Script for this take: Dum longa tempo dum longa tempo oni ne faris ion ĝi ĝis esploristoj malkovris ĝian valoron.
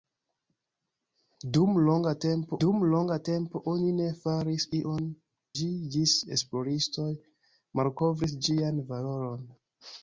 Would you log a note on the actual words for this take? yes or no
no